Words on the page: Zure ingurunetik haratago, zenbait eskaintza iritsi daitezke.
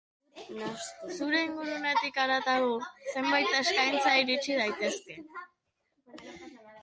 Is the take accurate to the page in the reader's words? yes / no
yes